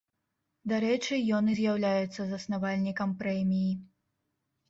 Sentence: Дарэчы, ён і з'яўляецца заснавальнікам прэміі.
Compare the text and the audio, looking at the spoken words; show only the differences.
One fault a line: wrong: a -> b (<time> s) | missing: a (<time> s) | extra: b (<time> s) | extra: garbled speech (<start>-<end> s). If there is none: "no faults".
no faults